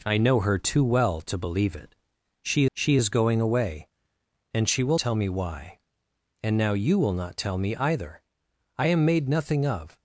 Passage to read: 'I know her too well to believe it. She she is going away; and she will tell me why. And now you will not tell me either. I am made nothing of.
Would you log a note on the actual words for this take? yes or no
no